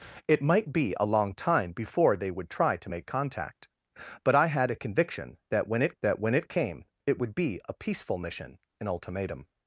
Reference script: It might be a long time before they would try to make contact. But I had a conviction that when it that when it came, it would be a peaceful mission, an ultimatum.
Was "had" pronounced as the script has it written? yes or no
yes